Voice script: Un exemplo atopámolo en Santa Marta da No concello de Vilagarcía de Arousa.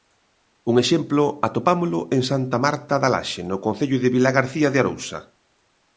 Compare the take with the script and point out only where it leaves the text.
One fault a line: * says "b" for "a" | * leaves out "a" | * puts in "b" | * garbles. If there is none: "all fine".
* puts in "Laxe"